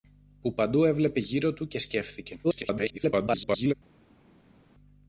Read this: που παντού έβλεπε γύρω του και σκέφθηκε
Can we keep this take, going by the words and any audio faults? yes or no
no